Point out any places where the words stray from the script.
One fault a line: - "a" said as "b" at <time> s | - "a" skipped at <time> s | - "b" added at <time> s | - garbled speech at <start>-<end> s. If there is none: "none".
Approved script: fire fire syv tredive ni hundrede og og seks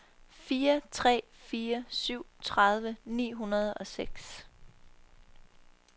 - "tre" added at 0.9 s
- "og" skipped at 3.9 s